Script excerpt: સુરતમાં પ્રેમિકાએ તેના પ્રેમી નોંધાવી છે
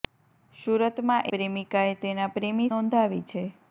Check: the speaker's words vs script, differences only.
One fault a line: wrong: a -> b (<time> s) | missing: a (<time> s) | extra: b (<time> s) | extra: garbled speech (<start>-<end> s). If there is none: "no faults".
no faults